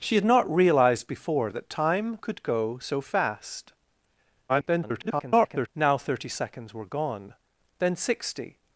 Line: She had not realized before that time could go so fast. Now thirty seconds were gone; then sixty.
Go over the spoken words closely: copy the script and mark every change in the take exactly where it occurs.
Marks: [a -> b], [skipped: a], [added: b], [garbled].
She had not realized before that time could go so fast. [garbled] Now thirty seconds were gone; then sixty.